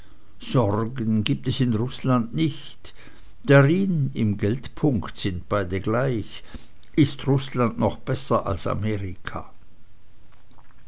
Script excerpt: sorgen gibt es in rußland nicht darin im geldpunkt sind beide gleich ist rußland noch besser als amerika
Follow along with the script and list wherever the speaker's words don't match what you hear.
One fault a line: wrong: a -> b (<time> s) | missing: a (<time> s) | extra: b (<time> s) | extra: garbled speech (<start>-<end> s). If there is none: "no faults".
no faults